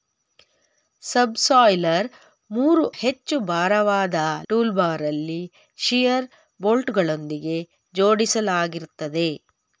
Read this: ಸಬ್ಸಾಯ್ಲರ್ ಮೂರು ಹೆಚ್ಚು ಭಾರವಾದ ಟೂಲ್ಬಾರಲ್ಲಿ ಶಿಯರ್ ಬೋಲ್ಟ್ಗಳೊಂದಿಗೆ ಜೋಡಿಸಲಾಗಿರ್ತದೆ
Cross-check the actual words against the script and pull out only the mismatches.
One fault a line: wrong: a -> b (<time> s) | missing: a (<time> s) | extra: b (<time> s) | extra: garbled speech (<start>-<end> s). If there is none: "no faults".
no faults